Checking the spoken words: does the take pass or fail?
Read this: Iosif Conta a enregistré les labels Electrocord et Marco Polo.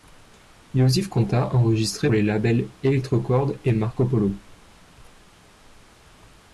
pass